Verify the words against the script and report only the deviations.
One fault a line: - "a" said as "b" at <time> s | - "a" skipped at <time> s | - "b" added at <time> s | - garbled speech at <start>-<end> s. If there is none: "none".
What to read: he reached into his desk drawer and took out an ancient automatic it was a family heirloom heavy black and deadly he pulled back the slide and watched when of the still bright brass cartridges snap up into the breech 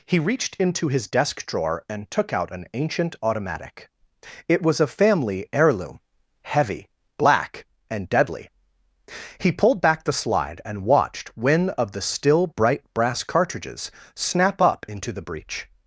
none